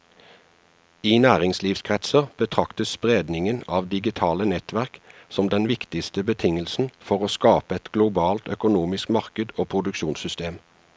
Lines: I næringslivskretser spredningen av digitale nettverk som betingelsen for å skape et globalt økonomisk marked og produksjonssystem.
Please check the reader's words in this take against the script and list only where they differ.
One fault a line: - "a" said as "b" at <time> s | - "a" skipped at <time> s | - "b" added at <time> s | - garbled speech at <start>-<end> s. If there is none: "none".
- "betraktes" added at 2.4 s
- "den viktigste" added at 5.5 s